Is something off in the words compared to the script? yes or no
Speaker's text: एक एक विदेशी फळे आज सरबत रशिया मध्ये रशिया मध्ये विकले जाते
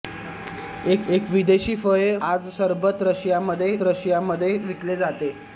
no